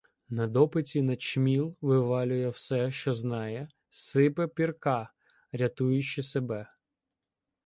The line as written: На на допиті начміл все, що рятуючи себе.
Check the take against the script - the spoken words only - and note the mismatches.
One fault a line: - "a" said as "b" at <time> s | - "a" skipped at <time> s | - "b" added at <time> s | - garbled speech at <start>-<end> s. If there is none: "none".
- "на" skipped at 0.5 s
- "вивалює" added at 1.8 s
- "знає сипе Пірка" added at 3.1 s